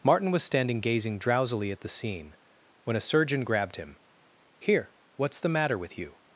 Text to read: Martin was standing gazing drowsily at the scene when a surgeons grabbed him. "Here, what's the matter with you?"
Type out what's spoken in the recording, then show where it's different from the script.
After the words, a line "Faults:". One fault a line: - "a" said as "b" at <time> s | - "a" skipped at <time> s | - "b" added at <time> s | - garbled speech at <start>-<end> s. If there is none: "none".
Martin was standing gazing drowsily at the scene when a surgeon grabbed him. "Here, what's the matter with you?"
Faults:
- "surgeons" said as "surgeon" at 3.0 s